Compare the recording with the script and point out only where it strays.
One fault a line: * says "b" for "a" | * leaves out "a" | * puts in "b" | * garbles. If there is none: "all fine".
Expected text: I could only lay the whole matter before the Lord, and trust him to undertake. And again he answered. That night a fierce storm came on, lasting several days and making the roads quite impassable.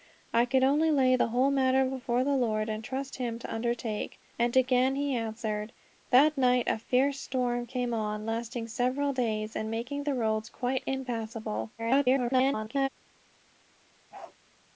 * garbles